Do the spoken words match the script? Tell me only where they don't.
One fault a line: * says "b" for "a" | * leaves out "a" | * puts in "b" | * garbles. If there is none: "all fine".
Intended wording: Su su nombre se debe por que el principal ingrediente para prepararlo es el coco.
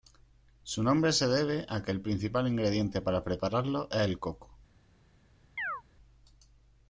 * leaves out "su"
* says "a" for "por"